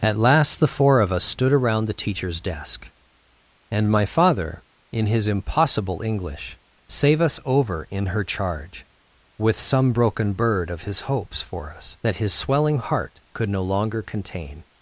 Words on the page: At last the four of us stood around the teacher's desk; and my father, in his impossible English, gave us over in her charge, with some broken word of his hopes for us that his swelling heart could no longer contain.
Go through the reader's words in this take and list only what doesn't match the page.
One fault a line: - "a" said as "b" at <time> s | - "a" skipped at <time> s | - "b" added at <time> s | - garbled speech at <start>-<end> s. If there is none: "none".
- "gave" said as "save" at 6.9 s
- "word" said as "bird" at 10.3 s